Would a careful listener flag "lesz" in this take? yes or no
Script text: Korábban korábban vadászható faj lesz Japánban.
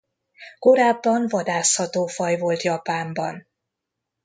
yes